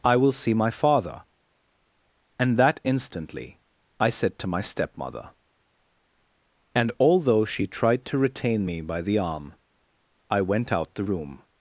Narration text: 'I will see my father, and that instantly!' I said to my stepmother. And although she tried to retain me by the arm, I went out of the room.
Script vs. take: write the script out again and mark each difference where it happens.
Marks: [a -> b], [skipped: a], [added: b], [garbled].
'I will see my father, and that instantly!' I said to my stepmother. And although she tried to retain me by the arm, I went out [skipped: of] the room.